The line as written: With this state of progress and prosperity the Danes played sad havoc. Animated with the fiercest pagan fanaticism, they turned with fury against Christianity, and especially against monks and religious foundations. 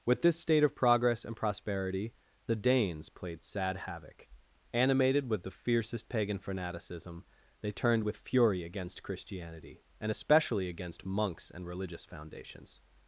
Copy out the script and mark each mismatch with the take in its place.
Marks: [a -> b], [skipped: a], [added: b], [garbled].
With this state of progress and prosperity the Danes played sad havoc. Animated with the fiercest pagan fanaticism, they turned with fury against Christianity, and especially against monks and religious foundations.